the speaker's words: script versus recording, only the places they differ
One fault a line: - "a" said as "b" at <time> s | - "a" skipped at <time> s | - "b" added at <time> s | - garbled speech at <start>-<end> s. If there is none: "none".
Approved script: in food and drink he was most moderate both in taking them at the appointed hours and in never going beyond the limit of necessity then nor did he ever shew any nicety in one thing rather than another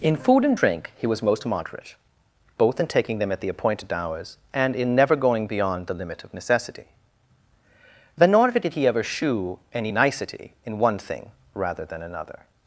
none